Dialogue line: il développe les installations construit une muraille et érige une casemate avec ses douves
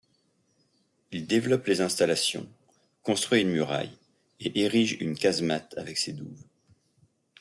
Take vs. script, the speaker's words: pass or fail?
pass